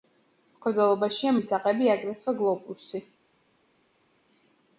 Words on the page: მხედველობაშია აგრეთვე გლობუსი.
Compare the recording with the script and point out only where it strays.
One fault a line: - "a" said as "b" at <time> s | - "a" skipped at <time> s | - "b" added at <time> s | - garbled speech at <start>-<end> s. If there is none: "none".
- "მისაღები" added at 1.3 s